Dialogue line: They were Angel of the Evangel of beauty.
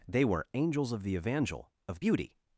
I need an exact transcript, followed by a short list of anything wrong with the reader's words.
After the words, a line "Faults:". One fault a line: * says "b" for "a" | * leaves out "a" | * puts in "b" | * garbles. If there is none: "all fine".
They were Angels of the Evangel of beauty.
Faults:
* says "Angels" for "Angel"